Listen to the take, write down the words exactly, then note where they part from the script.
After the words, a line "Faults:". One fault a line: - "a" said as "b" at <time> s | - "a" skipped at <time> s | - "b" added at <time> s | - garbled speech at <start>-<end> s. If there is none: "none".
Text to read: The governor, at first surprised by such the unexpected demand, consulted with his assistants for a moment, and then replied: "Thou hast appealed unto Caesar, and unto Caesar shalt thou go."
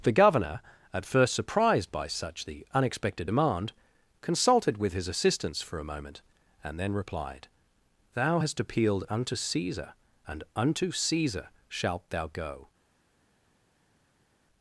The governor, at first surprised by such the unexpected demand, consulted with his assistants for a moment, and then replied: "Thou hast appealed unto Caesar, and unto Caesar shalt thou go."
Faults:
none